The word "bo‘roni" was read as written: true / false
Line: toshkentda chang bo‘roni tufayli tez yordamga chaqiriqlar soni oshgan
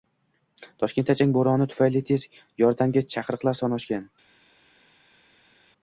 true